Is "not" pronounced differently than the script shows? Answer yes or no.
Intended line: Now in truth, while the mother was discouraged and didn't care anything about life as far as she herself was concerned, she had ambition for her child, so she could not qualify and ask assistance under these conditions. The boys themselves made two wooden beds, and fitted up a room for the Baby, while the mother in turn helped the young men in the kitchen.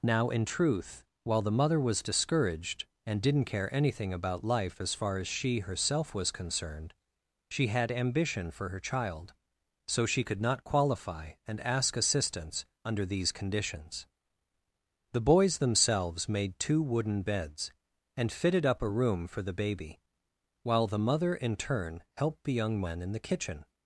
no